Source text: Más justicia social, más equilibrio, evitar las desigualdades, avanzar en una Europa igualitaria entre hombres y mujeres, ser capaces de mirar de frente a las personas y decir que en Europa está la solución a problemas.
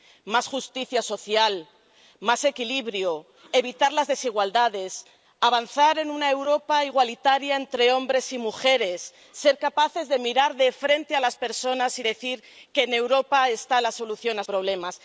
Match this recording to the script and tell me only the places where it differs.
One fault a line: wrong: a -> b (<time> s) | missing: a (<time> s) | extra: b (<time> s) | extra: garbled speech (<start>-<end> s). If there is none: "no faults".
no faults